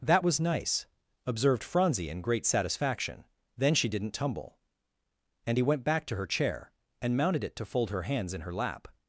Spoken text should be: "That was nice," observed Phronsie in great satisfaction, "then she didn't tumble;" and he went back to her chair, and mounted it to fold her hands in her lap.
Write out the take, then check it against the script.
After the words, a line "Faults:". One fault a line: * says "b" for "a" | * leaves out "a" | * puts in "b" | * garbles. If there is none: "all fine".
"That was nice," observed Phronsie in great satisfaction, "then she didn't tumble;" and he went back to her chair, and mounted it to fold her hands in her lap.
Faults:
all fine